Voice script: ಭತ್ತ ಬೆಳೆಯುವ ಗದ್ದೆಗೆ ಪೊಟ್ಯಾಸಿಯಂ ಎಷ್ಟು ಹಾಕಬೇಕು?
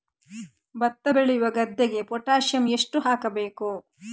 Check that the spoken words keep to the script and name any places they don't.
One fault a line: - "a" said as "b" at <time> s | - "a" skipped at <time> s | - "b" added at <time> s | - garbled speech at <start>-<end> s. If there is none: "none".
none